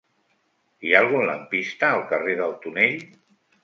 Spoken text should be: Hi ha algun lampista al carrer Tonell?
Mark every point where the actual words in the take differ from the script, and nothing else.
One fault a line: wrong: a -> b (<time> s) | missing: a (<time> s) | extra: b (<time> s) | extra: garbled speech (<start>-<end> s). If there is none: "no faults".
extra: del (2.4 s)